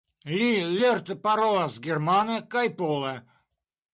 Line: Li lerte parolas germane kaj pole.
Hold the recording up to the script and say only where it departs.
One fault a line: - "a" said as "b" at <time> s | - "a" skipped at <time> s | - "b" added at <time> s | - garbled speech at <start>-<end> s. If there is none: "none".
none